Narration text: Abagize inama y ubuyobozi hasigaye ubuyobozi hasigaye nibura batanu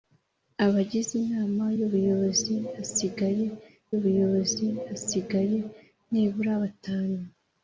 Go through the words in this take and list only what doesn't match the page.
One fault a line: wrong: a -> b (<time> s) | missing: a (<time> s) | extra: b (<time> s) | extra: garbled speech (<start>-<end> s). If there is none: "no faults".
no faults